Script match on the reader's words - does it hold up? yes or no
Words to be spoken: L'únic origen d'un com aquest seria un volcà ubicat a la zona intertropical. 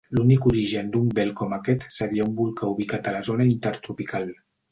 no